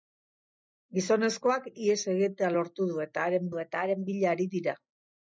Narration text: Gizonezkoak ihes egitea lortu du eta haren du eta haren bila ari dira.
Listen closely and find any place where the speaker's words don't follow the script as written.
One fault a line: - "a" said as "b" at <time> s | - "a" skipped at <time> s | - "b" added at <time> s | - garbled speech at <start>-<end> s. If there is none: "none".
none